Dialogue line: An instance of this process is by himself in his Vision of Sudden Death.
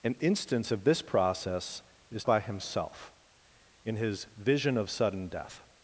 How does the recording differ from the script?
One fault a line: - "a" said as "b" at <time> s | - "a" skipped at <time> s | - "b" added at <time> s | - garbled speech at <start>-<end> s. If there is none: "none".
none